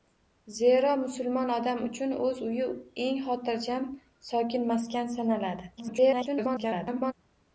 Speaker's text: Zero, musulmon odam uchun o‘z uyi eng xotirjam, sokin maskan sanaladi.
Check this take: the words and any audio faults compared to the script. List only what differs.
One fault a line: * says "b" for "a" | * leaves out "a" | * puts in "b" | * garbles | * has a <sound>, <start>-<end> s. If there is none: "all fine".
* garbles